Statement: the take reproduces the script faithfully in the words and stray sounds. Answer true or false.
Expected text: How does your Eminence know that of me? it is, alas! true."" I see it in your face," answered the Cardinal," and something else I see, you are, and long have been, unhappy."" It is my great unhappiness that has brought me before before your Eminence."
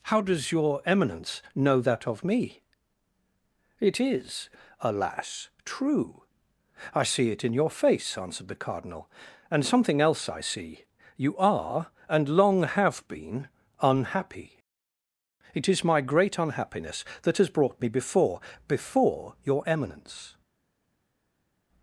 true